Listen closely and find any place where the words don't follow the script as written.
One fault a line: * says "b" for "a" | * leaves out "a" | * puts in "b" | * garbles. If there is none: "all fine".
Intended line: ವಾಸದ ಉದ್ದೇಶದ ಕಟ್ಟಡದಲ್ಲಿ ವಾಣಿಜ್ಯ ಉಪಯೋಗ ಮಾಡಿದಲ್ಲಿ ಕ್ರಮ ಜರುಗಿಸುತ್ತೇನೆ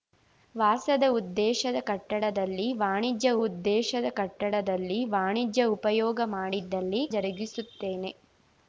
* puts in "ಉದ್ದೇಶದ ಕಟ್ಟಡದಲ್ಲಿ ವಾಣಿಜ್ಯ"
* leaves out "ಕ್ರಮ"